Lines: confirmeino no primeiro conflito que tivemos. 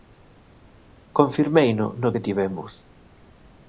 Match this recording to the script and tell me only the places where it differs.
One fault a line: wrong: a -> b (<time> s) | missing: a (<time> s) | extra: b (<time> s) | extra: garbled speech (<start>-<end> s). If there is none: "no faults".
missing: primeiro conflito (2.1 s)